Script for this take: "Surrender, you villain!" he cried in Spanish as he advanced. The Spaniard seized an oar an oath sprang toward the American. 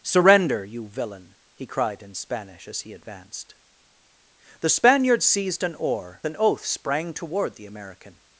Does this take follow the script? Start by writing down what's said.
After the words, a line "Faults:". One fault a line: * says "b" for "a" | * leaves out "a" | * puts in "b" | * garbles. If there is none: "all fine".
"Surrender, you villain!" he cried in Spanish as he advanced. The Spaniard seized an oar an oath sprang toward the American.
Faults:
all fine